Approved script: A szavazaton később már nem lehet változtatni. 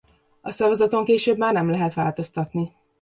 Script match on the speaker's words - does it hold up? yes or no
yes